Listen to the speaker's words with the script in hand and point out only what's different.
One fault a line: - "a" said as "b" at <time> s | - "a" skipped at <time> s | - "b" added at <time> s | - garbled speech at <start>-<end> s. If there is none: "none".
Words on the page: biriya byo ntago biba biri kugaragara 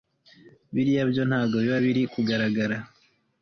none